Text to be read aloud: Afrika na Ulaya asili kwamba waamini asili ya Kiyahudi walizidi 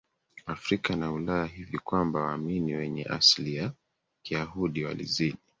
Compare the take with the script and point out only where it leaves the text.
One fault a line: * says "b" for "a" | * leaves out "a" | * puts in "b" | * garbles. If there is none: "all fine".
* says "hivi" for "asili"
* puts in "wenye"